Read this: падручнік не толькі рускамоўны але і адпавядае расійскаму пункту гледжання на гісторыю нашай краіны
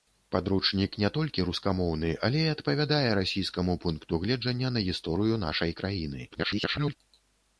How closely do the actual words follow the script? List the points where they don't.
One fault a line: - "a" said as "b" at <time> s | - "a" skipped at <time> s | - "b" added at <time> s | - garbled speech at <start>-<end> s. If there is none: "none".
- garbled speech at 6.3-7.0 s